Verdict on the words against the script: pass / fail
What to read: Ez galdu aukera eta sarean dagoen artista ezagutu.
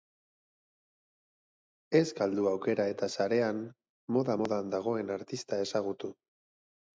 fail